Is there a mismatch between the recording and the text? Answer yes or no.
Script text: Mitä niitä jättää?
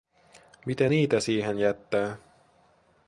yes